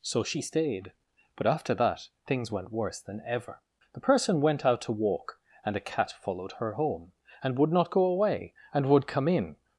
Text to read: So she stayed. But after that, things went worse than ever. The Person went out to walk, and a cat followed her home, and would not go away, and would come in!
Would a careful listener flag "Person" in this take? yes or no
no